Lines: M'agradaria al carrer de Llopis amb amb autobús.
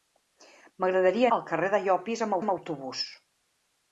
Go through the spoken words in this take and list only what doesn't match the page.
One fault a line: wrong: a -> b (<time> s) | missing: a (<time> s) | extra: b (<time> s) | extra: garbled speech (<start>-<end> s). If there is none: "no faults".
no faults